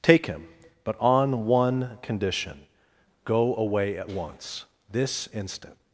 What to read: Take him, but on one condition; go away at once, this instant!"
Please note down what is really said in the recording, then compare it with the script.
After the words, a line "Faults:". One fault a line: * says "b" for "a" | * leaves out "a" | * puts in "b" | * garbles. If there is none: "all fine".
Take him, but on one condition; go away at once, this instant!"
Faults:
all fine